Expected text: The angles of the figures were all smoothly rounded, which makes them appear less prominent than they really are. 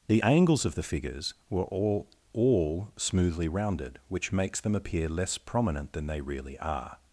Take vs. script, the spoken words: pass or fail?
fail